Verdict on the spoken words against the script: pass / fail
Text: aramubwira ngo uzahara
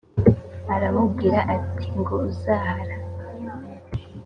fail